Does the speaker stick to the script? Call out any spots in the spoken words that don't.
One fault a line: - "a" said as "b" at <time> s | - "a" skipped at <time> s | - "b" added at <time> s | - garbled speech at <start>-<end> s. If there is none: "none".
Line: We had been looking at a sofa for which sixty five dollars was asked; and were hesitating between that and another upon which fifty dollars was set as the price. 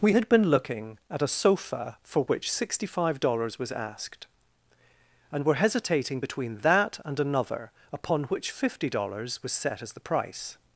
none